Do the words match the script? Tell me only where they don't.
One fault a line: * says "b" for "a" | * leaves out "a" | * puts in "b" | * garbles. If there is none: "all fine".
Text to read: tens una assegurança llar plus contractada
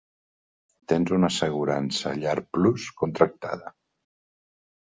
all fine